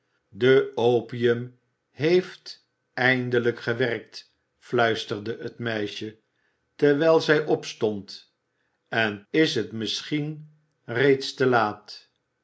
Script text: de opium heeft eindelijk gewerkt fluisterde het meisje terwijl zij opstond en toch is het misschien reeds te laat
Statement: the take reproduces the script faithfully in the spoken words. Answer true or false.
false